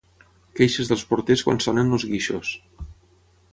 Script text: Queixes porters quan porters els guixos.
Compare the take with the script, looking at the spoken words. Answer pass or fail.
fail